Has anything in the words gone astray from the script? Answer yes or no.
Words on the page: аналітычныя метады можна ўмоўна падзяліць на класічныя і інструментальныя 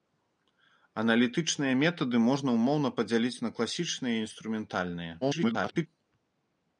yes